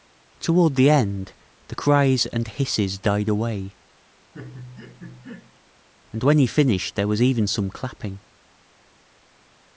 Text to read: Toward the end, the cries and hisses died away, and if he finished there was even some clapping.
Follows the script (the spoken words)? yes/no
no